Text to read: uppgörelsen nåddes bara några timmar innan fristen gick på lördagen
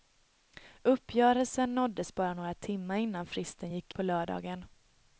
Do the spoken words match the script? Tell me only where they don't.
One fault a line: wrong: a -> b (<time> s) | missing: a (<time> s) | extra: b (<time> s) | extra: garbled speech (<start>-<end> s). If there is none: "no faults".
no faults